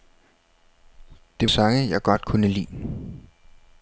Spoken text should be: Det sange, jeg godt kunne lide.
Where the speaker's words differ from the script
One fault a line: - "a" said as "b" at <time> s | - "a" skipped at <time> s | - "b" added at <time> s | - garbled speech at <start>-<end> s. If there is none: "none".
none